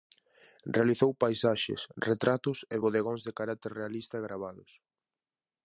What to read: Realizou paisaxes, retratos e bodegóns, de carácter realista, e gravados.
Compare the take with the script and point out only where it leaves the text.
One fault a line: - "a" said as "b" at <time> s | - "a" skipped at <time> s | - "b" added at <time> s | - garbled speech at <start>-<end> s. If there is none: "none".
none